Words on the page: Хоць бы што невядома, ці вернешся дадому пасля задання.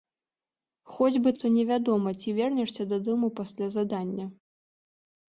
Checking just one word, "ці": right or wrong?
right